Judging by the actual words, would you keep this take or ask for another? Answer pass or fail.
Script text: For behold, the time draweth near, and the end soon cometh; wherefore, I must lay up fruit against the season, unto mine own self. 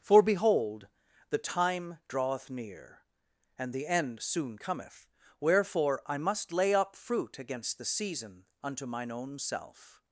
pass